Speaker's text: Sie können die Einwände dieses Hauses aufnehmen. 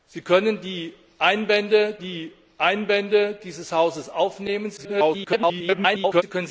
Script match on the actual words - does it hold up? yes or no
no